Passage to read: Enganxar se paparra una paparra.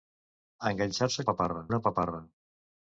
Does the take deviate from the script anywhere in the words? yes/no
no